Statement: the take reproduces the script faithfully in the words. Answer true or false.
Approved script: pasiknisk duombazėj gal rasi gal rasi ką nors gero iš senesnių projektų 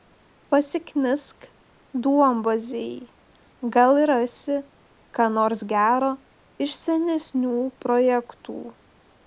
false